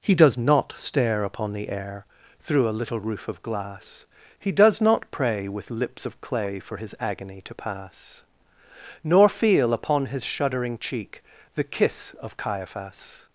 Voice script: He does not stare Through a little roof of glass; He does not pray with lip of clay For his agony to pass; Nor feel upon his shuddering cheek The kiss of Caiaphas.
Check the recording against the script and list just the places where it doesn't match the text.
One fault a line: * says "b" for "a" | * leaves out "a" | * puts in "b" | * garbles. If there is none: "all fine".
* puts in "upon the air"
* says "lips" for "lip"